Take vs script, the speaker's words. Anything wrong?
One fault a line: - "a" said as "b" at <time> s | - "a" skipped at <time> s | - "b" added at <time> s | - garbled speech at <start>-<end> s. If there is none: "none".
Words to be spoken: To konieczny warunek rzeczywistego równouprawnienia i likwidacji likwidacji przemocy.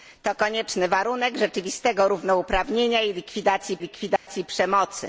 none